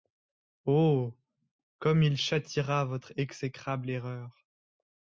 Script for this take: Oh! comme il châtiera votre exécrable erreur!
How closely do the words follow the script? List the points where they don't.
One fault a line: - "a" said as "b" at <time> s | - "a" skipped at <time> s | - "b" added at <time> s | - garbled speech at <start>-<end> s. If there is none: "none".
none